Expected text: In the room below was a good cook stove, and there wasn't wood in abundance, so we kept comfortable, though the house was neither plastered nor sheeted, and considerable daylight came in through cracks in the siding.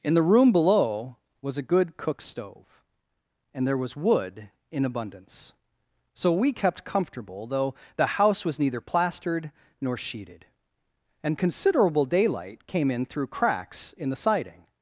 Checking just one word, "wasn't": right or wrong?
wrong